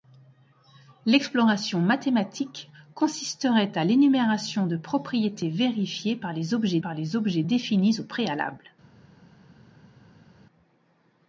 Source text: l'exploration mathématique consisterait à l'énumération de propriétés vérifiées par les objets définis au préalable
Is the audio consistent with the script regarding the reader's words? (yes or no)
no